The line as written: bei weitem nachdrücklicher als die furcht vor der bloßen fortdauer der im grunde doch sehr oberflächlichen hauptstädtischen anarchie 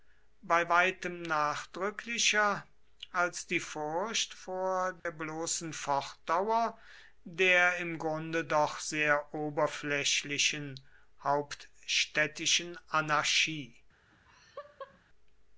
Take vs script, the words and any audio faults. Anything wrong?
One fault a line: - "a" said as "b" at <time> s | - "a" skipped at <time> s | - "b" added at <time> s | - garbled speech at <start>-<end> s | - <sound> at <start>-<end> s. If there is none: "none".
- dropout at 5.0-5.1 s
- laugh at 14.1-15.0 s